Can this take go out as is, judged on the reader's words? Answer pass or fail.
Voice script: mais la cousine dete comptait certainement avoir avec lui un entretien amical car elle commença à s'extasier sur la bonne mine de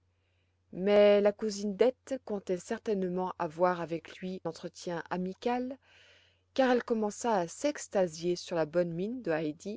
fail